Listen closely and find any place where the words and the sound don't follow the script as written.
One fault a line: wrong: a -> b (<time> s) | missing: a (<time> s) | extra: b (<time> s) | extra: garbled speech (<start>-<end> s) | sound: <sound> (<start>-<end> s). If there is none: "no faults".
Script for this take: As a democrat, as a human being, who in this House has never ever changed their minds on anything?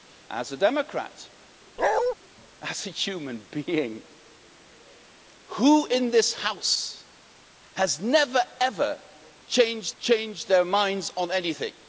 sound: bark (1.8-2.1 s)
extra: changed (10.0 s)